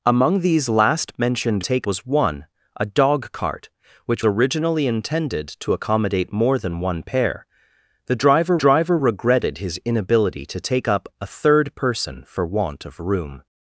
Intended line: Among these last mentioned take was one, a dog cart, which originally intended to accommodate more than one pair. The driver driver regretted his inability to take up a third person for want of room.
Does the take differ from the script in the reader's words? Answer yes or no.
no